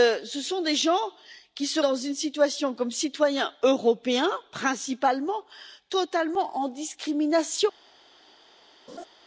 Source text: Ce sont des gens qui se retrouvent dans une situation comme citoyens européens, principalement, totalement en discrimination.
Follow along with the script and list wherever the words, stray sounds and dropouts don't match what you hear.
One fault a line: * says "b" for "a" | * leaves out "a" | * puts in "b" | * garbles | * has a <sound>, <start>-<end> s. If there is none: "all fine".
* leaves out "retrouvent"
* has a laugh, 8.9-9.1 s